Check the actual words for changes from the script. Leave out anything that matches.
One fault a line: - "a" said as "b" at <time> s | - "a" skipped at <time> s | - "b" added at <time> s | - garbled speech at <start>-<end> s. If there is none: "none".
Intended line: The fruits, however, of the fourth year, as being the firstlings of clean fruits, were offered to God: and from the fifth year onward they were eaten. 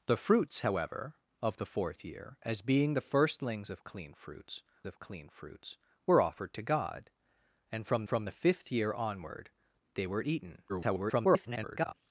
- "of clean fruits" added at 4.8 s
- "from" added at 8.1 s
- garbled speech at 10.7-11.9 s